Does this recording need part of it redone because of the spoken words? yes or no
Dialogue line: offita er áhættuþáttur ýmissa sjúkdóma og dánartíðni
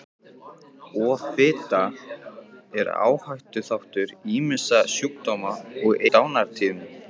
no